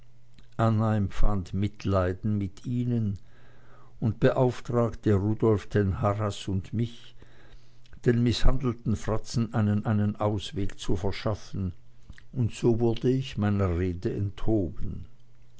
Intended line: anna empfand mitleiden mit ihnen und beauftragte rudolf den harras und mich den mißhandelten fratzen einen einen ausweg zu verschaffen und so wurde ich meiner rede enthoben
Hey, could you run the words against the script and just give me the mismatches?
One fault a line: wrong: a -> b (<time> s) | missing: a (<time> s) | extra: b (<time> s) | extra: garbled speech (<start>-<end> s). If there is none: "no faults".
no faults